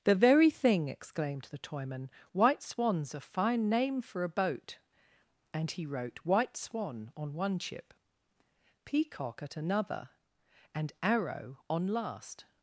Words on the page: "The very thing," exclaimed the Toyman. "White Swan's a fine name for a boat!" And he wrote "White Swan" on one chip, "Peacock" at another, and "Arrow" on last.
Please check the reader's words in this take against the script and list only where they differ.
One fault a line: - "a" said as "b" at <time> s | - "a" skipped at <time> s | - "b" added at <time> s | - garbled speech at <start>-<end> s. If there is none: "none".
none